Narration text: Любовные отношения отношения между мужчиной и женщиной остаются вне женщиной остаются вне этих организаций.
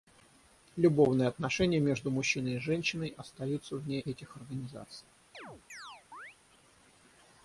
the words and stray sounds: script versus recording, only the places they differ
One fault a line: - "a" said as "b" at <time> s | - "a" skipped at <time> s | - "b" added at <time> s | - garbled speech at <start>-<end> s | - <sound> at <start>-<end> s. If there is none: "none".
- "отношения" skipped at 1.8 s
- "женщиной остаются вне" skipped at 4.0 s
- chirp at 5.3-6.4 s